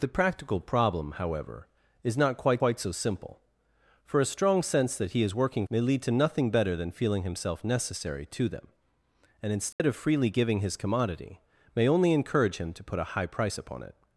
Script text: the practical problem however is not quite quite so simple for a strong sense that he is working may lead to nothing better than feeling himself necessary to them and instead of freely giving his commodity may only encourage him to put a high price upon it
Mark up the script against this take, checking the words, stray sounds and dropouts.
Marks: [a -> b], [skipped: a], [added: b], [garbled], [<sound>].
the practical problem however is not quite quite so simple for a strong sense that he is working may lead to nothing better than feeling himself necessary to them and instead [dropout] of freely giving his commodity may only encourage him to put a high price upon it